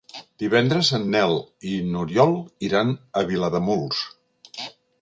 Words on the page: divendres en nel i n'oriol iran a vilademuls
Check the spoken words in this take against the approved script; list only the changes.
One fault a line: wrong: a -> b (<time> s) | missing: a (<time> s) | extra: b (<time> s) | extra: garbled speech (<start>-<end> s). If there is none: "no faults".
no faults